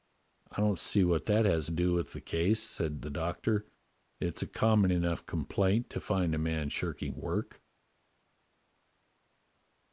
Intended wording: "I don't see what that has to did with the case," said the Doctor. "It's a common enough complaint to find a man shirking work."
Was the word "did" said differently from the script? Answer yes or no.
yes